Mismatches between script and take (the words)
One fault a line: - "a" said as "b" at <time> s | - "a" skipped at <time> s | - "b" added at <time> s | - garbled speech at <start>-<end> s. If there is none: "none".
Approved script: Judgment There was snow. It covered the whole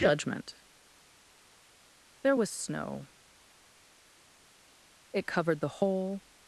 none